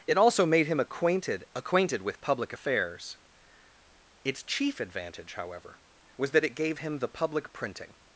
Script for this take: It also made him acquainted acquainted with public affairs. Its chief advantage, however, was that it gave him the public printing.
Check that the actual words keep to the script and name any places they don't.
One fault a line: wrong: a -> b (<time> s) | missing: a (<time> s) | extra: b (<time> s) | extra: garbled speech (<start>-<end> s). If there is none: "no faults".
no faults